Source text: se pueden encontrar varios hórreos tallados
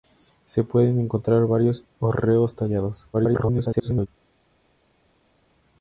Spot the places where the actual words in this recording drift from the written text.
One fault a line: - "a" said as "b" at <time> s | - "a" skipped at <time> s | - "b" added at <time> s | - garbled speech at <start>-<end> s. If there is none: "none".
- garbled speech at 3.1-4.1 s